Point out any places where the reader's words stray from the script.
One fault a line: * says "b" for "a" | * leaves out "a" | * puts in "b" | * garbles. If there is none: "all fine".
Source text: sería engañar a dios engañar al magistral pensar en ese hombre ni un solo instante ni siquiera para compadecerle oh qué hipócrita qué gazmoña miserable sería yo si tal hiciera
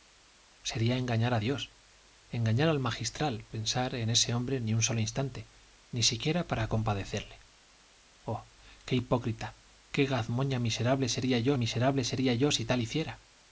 * puts in "miserable sería yo"